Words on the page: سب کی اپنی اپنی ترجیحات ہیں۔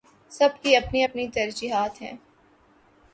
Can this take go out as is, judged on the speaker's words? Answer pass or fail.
pass